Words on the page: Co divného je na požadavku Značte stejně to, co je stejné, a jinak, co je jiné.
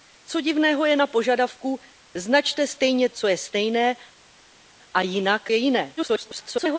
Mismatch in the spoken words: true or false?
true